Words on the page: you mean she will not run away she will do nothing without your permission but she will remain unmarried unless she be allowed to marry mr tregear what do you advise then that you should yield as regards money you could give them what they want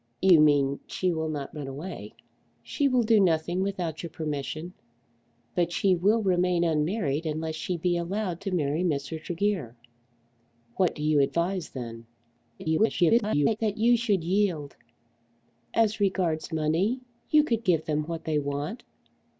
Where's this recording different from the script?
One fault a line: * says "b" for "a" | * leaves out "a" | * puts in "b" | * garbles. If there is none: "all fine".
* garbles